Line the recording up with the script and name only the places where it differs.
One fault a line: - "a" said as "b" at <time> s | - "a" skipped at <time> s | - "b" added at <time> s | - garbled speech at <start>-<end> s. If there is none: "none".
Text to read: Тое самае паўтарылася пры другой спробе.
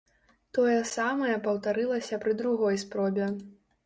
none